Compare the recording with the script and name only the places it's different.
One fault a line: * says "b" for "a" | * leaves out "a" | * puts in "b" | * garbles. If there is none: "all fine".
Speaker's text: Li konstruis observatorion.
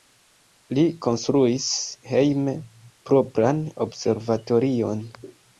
* puts in "hejme propran"